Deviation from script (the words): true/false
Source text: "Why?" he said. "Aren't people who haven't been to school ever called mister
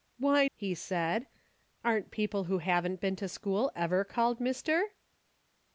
false